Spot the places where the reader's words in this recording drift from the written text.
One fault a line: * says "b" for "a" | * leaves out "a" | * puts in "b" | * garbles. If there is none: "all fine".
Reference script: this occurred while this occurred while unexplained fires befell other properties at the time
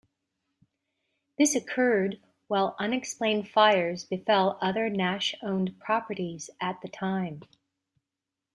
* leaves out "this occurred while"
* puts in "nash owned"